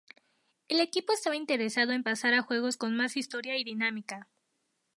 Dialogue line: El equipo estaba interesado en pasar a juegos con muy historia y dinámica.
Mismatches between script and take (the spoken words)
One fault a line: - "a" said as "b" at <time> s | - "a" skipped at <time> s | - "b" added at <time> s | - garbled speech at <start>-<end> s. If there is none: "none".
- "muy" said as "más" at 2.9 s